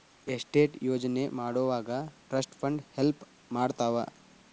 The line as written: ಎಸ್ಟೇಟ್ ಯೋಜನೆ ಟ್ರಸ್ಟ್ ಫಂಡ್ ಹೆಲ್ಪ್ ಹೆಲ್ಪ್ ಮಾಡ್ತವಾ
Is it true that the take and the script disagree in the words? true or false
true